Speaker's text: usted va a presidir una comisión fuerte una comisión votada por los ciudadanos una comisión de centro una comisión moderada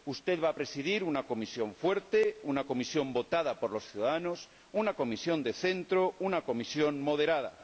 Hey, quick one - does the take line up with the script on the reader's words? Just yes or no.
yes